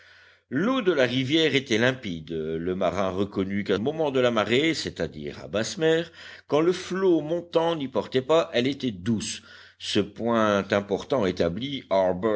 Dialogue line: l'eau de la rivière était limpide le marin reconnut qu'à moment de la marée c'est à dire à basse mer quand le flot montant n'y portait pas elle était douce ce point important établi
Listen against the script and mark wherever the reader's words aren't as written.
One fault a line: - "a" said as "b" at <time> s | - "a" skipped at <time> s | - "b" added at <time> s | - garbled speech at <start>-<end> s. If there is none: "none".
none